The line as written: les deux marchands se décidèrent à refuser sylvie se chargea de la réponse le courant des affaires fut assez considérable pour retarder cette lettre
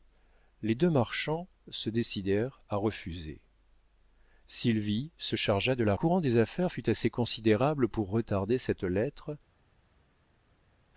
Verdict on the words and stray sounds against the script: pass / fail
fail